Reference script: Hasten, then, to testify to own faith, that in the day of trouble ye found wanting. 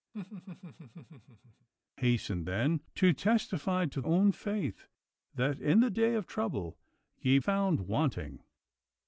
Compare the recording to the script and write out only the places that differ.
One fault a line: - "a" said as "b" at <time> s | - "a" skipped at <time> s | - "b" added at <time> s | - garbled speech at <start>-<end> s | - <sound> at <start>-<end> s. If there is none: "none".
- laugh at 0.1-1.7 s